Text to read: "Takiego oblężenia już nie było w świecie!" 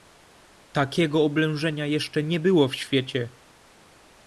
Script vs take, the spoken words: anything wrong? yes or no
yes